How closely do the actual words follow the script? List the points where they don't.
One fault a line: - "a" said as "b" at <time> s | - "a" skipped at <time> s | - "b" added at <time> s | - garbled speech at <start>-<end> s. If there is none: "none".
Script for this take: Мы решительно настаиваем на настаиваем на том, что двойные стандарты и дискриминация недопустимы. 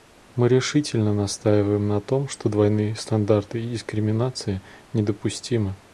- "настаиваем на" skipped at 2.0 s